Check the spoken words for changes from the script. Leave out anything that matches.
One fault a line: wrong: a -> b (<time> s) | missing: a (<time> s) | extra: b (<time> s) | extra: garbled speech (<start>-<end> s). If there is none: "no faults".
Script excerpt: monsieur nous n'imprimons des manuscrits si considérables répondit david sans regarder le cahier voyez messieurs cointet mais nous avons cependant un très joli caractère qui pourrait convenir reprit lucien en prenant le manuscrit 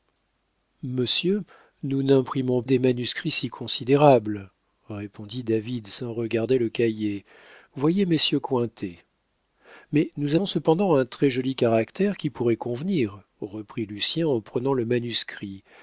no faults